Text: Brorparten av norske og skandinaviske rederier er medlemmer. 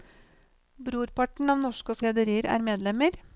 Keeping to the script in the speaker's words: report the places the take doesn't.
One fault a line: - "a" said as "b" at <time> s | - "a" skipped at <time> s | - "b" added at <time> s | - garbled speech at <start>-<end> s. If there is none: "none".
- "skandinaviske" skipped at 2.0 s